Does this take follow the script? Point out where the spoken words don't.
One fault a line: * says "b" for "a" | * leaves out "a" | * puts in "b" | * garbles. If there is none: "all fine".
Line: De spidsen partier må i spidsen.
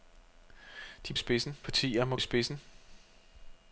all fine